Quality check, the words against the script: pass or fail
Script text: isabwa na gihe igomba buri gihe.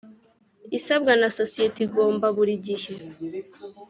fail